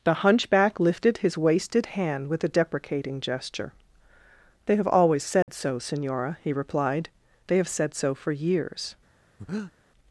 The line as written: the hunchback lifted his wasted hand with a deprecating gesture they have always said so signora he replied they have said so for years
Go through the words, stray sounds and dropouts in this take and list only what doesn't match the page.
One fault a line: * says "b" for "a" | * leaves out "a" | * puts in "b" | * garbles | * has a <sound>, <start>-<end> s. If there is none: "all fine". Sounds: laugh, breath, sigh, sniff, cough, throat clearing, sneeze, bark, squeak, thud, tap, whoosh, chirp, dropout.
* has a dropout, 5.4-5.5 s
* has a breath, 9.4-9.7 s